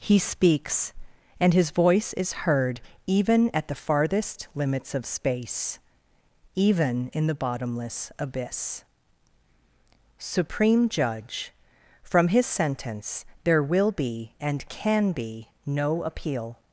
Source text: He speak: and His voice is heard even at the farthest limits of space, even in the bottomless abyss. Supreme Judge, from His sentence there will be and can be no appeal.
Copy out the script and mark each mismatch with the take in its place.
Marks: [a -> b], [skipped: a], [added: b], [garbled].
He [speak: -> speaks] and His voice is heard even at the farthest limits of space, even in the bottomless abyss. Supreme Judge, from His sentence there will be and can be no appeal.